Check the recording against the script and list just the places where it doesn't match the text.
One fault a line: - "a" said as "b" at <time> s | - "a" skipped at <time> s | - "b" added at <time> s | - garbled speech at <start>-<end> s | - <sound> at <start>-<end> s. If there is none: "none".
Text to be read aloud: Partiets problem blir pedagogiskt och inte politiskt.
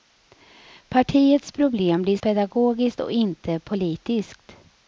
none